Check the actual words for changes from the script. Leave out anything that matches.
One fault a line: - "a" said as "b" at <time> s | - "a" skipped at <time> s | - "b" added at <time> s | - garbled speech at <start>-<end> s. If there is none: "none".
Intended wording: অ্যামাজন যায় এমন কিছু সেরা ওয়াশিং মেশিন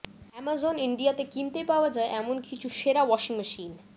- "ইন্ডিয়াতে কিনতে পাওয়া" added at 0.8 s